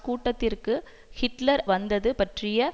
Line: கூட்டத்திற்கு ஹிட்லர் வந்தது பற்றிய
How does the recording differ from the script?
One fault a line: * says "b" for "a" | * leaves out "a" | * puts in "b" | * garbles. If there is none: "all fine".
all fine